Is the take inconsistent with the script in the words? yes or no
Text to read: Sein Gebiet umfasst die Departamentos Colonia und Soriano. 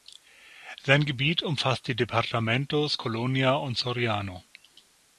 no